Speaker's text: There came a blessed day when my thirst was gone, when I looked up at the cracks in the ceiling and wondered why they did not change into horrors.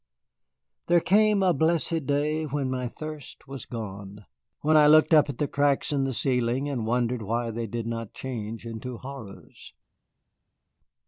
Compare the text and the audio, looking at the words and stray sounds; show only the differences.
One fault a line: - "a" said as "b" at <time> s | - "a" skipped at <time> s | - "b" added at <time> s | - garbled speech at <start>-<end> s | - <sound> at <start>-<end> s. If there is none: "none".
none